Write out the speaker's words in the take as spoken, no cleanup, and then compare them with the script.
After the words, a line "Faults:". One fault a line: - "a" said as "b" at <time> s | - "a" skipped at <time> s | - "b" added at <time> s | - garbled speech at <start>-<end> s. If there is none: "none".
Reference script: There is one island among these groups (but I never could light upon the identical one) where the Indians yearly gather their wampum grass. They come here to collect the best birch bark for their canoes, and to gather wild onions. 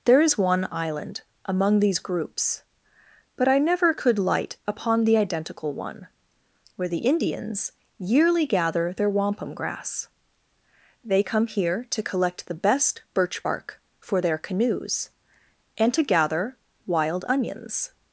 There is one island among these groups (but I never could light upon the identical one) where the Indians yearly gather their wampum grass. They come here to collect the best birch bark for their canoes, and to gather wild onions.
Faults:
none